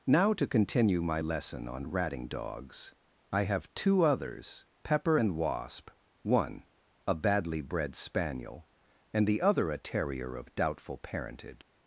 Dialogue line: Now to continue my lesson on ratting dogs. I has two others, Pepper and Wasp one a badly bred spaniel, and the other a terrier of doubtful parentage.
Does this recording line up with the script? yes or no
no